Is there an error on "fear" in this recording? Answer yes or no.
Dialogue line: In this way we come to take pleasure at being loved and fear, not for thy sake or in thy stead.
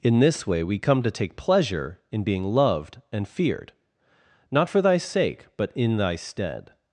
yes